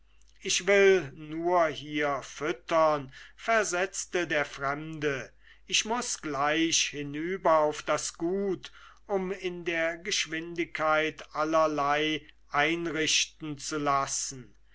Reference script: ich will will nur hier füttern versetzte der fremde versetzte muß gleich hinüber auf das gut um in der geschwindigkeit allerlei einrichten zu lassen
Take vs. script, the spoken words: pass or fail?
fail